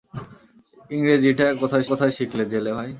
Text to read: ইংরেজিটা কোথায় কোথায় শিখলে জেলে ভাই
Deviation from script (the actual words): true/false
false